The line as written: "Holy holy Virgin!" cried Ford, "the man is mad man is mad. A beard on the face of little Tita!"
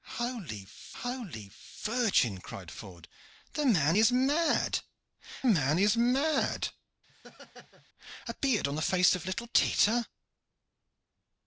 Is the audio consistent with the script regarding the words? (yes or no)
yes